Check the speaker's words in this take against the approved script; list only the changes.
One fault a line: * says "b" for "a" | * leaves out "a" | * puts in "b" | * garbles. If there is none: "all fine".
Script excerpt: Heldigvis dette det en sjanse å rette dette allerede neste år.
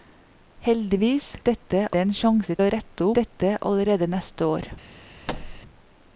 all fine